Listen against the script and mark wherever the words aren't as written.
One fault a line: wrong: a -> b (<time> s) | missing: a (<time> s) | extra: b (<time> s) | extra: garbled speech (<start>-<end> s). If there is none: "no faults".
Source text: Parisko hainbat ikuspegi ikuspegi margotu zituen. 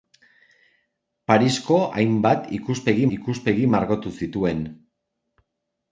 no faults